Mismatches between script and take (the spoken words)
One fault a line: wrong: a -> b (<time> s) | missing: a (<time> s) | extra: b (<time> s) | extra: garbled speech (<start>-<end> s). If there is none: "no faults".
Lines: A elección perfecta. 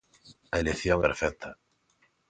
no faults